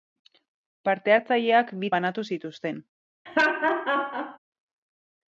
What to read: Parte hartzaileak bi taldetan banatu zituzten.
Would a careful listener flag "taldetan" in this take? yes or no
yes